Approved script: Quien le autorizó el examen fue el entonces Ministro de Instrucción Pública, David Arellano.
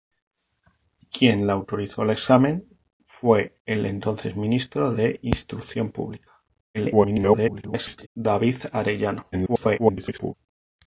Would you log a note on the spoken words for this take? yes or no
yes